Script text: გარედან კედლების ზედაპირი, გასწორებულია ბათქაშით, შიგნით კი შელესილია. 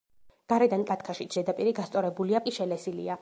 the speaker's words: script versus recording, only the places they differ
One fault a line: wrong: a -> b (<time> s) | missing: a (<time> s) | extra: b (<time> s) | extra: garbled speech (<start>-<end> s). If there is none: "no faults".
wrong: კედლების -> ბათქაშით (0.9 s)
missing: ბათქაშით შიგნით (2.4 s)